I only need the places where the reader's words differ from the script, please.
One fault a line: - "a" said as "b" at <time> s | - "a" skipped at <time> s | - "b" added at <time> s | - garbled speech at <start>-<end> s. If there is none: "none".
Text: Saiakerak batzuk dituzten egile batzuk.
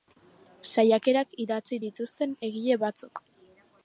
- "batzuk" said as "idatzi" at 1.4 s